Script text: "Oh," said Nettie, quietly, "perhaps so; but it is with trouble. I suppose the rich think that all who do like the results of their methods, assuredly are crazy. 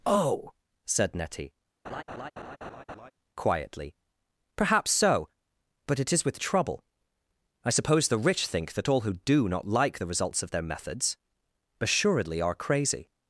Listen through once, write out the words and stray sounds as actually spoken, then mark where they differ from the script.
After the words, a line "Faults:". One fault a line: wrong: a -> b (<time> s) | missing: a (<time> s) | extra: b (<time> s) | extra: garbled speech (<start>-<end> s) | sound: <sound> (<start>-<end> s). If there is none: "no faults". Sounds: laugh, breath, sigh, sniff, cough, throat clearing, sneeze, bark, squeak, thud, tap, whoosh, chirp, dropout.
"Oh," said Nettie, quietly, "perhaps so; but it is with trouble. I suppose the rich think that all who do not like the results of their methods, assuredly are crazy.
Faults:
sound: laugh (1.8-3.1 s)
extra: not (9.5 s)